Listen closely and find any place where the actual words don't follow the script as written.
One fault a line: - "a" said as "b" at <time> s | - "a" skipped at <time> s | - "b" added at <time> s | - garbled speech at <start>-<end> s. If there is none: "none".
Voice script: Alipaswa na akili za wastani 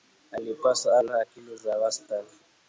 none